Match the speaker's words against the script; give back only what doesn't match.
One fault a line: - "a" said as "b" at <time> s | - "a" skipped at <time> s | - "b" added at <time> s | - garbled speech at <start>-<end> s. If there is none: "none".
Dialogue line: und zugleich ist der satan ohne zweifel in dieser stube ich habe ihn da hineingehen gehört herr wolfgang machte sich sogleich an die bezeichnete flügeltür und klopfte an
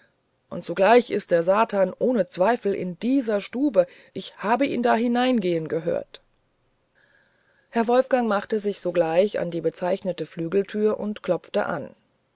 none